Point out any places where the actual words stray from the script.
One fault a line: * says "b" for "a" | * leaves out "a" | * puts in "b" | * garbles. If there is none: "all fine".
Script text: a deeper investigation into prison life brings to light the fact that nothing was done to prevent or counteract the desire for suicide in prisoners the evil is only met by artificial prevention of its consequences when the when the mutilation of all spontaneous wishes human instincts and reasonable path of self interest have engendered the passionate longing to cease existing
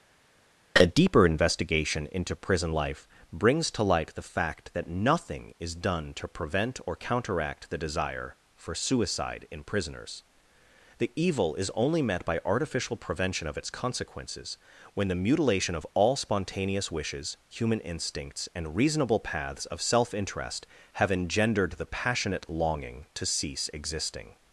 * says "is" for "was"
* leaves out "when the"
* says "paths" for "path"